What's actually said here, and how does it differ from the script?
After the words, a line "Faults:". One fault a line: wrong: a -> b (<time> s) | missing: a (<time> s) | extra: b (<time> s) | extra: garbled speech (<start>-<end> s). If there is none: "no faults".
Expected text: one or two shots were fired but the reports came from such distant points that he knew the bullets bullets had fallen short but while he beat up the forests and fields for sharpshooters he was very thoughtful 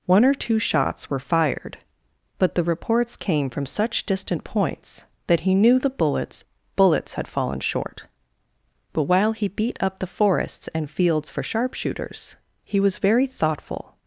one or two shots were fired but the reports came from such distant points that he knew the bullets bullets had fallen short but while he beat up the forests and fields for sharpshooters he was very thoughtful
Faults:
no faults